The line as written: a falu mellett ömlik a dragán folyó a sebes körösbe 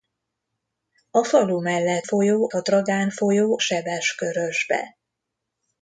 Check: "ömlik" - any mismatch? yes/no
yes